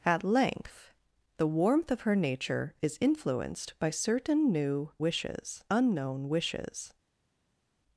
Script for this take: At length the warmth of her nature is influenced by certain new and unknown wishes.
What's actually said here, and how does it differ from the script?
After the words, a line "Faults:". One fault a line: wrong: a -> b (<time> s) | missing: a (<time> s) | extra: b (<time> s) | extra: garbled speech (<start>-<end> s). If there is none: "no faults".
At length the warmth of her nature is influenced by certain new wishes unknown wishes.
Faults:
wrong: and -> wishes (5.0 s)